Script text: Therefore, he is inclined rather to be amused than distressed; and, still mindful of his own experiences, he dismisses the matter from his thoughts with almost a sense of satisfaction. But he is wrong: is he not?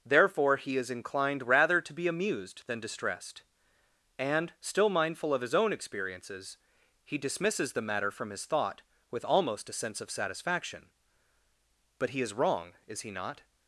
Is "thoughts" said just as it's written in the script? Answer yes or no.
no